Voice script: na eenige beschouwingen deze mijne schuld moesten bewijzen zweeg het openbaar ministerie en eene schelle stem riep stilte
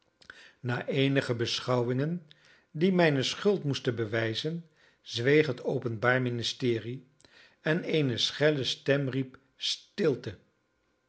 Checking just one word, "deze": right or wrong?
wrong